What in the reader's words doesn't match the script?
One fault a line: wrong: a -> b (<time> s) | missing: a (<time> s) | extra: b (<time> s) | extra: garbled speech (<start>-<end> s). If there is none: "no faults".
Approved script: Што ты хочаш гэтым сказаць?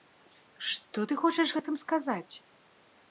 no faults